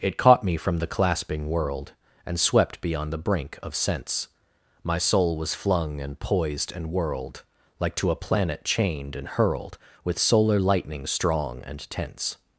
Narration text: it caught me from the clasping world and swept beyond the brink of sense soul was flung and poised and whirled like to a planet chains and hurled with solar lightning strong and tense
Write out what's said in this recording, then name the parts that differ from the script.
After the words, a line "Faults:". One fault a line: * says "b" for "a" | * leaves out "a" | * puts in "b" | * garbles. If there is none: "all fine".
it caught me from the clasping world and swept beyond the brink of sense my soul was flung and poised and whirled like to a planet chained and hurled with solar lightning strong and tense
Faults:
* puts in "my"
* says "chained" for "chains"